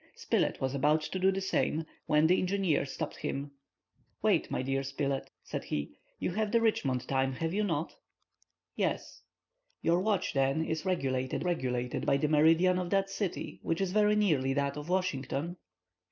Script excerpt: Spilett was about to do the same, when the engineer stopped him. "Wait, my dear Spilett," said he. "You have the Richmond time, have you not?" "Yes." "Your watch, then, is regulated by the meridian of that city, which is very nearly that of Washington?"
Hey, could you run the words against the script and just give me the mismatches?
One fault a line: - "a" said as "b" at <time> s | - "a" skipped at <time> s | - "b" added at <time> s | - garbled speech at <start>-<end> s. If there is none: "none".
- "regulated" added at 11.5 s